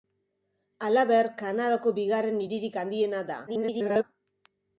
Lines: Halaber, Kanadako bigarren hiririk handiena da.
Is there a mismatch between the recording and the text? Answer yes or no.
yes